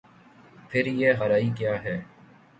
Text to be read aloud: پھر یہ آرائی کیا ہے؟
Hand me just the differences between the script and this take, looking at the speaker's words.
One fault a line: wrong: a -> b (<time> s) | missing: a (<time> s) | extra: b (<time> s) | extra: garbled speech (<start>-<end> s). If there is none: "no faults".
no faults